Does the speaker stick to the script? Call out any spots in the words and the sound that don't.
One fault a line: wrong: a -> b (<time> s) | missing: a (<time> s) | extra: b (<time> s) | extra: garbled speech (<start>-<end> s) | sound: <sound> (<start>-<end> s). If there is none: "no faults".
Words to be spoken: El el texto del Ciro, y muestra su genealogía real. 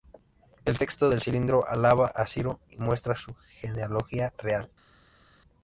missing: el (0.8 s)
extra: cilindro alaba a (1.2 s)